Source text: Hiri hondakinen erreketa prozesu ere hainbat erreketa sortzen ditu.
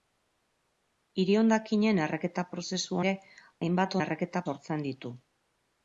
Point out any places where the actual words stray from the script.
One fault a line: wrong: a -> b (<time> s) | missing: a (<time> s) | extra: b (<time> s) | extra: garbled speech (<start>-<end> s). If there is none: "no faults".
no faults